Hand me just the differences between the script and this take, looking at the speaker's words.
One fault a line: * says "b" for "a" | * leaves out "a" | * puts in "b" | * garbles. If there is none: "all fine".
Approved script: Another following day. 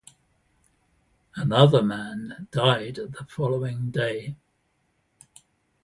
* puts in "man died the"